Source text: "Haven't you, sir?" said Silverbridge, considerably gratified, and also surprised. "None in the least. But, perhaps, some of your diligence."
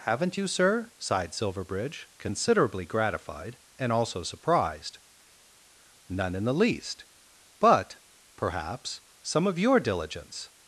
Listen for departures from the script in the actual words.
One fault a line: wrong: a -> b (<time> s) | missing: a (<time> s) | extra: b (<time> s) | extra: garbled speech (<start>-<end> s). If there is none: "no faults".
wrong: said -> sighed (1.0 s)